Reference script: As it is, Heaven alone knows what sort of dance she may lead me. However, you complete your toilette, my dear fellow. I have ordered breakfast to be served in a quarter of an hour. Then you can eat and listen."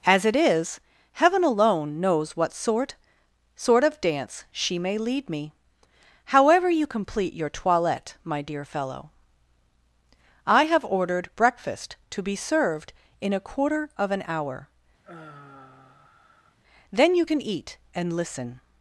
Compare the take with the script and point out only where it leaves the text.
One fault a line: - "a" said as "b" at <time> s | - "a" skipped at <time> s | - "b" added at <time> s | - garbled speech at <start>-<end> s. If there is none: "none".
- "sort" added at 3.5 s